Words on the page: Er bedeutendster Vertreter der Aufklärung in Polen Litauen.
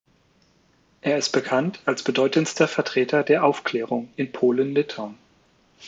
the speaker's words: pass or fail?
fail